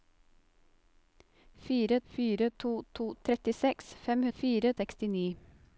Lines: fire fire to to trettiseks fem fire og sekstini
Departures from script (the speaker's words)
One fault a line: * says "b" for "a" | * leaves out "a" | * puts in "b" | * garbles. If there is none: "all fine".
all fine